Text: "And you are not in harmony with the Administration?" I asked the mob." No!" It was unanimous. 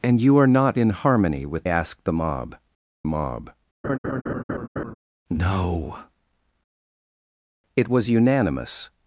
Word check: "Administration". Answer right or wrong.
wrong